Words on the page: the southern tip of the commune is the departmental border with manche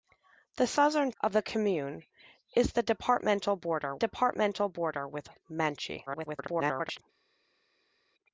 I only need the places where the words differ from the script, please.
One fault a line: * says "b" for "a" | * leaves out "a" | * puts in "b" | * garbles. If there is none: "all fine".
* leaves out "tip"
* puts in "departmental border"
* garbles